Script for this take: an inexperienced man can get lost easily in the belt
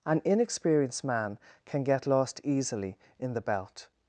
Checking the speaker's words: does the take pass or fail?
pass